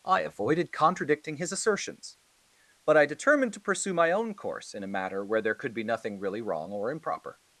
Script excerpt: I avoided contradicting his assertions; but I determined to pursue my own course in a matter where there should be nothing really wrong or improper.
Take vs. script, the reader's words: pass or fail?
fail